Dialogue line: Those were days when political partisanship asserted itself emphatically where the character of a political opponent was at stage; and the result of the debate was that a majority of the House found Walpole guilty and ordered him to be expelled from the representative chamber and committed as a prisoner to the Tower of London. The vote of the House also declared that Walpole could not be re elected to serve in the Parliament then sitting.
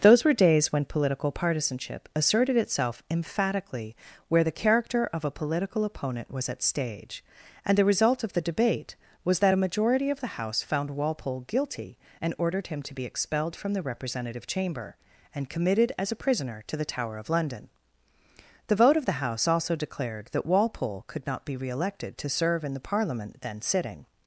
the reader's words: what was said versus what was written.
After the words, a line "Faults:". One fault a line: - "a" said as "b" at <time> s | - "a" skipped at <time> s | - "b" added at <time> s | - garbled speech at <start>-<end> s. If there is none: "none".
Those were days when political partisanship asserted itself emphatically where the character of a political opponent was at stage; and the result of the debate was that a majority of the House found Walpole guilty and ordered him to be expelled from the representative chamber and committed as a prisoner to the Tower of London. The vote of the House also declared that Walpole could not be re elected to serve in the Parliament then sitting.
Faults:
none